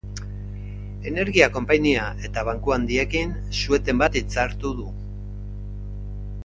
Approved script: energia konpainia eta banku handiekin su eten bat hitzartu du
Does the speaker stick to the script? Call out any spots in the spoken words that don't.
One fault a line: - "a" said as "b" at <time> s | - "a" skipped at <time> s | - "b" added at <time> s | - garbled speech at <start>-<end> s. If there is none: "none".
none